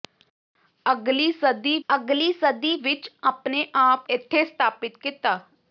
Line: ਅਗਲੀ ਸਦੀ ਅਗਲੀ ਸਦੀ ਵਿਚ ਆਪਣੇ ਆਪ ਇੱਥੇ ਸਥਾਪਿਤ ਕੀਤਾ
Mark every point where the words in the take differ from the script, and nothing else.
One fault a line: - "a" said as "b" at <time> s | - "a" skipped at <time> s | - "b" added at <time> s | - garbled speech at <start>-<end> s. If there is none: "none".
none